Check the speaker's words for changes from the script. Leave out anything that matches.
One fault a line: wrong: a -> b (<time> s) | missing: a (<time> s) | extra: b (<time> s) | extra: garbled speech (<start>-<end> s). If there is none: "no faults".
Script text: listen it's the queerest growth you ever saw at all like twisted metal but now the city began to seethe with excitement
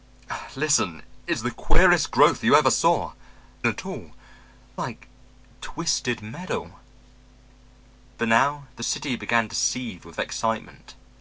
no faults